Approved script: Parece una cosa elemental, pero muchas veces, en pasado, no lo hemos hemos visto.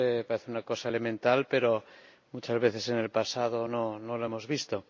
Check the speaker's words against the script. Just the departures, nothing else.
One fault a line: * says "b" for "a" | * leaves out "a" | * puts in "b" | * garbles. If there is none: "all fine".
* puts in "el"
* leaves out "hemos"